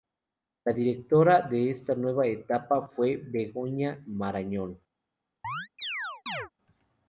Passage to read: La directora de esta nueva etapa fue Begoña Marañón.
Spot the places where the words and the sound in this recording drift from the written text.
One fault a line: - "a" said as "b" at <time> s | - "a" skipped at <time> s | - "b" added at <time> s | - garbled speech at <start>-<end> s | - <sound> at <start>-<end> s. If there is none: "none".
- chirp at 5.4-6.5 s